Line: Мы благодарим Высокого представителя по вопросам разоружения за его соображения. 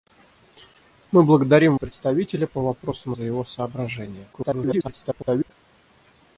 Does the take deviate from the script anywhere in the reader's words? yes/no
yes